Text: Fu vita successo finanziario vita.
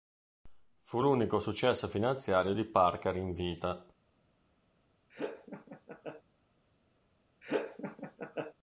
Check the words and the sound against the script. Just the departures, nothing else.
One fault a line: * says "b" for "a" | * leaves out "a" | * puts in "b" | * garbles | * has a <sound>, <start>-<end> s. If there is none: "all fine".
* says "l'unico" for "vita"
* puts in "di Parker in"
* has a laugh, 5.1-6.2 s
* has a laugh, 7.4-8.5 s